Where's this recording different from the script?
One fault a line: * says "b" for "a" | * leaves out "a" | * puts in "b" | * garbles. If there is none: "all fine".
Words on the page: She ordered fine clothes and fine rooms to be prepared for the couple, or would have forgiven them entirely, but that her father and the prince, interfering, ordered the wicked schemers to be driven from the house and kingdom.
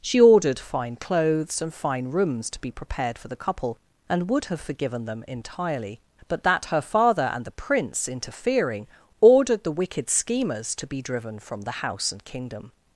* says "and" for "or"